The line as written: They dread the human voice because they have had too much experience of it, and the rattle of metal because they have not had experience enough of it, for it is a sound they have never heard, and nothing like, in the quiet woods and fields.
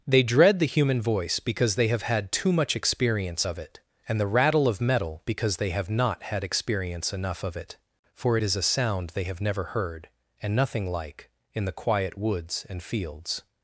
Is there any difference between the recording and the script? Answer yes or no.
no